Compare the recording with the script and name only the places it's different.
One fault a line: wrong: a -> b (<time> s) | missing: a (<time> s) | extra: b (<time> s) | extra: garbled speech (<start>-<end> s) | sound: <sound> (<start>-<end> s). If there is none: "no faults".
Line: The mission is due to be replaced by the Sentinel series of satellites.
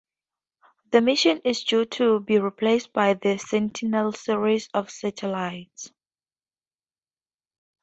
no faults